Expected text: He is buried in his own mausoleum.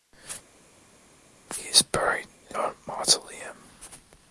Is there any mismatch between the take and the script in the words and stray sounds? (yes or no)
yes